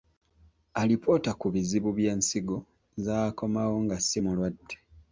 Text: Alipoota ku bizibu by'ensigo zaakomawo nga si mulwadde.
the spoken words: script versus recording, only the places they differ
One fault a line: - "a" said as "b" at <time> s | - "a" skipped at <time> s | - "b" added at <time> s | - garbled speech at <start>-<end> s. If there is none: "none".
none